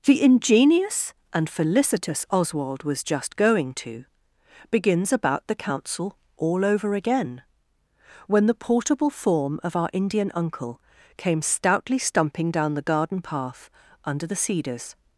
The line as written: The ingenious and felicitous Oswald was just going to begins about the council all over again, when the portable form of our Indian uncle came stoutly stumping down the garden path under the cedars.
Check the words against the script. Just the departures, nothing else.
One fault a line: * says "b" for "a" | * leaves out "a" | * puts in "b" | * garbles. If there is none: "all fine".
all fine